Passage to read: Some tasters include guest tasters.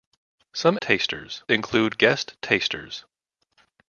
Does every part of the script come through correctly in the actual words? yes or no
yes